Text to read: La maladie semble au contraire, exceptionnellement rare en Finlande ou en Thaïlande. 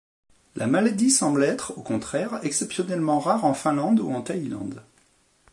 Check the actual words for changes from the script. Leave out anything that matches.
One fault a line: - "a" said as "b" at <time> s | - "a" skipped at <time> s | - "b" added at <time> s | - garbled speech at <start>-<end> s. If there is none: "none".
- "être" added at 1.4 s